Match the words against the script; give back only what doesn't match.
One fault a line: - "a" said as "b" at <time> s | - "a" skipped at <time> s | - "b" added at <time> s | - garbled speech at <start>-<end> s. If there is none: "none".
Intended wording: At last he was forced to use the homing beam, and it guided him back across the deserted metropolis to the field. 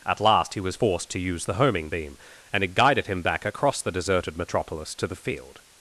none